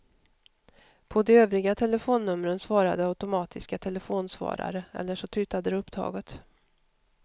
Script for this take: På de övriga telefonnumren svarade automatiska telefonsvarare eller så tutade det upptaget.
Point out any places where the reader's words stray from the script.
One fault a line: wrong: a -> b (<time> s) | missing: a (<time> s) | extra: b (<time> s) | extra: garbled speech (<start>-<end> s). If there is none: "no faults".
no faults